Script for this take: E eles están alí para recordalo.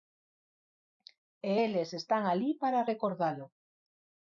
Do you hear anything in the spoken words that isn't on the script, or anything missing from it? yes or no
no